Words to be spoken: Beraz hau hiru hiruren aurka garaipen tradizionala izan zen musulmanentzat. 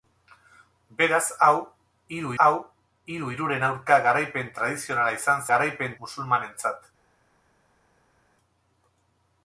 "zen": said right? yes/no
no